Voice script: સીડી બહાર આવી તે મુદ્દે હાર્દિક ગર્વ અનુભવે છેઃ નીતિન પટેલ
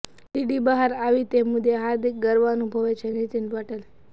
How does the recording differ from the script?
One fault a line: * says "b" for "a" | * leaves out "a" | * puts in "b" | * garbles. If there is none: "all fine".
all fine